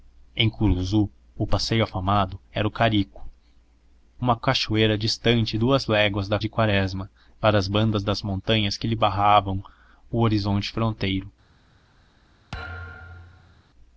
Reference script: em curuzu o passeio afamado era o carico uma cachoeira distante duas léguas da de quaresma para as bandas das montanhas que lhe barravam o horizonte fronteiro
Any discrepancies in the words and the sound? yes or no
yes